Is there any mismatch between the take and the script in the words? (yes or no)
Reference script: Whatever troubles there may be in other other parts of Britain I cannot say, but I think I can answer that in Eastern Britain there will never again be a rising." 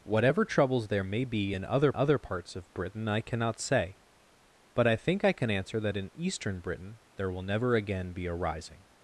no